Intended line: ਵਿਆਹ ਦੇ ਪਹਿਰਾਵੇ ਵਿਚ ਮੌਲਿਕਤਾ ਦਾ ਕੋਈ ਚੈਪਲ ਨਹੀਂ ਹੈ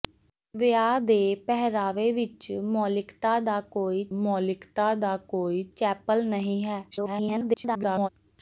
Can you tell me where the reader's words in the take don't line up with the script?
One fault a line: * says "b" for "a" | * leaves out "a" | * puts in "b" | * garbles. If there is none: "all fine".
* puts in "ਮੌਲਿਕਤਾ ਦਾ ਕੋਈ"
* garbles